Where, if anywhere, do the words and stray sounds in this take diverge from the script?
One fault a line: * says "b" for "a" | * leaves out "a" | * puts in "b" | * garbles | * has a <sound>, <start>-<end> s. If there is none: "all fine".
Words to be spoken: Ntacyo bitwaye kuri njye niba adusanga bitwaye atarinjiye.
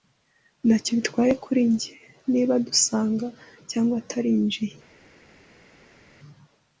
* says "cyangwa" for "bitwaye"